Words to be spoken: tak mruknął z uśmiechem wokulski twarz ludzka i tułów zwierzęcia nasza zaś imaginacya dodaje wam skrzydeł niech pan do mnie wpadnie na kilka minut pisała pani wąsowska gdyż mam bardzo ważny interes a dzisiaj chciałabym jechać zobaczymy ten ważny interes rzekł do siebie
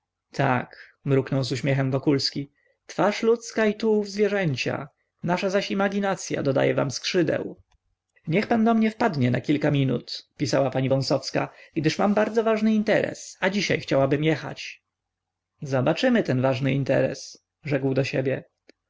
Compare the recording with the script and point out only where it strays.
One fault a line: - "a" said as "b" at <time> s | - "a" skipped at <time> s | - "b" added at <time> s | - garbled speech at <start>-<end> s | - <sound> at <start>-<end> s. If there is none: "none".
none